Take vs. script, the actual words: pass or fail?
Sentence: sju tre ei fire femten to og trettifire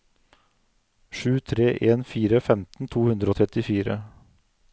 fail